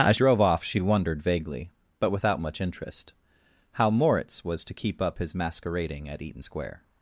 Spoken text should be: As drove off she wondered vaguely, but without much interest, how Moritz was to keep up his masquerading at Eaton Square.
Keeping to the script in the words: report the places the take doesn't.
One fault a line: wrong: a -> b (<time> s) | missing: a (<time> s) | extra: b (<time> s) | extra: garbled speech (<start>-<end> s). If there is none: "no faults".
no faults